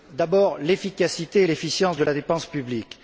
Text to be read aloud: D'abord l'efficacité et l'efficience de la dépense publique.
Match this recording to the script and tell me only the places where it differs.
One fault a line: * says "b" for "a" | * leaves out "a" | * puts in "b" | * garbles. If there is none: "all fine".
all fine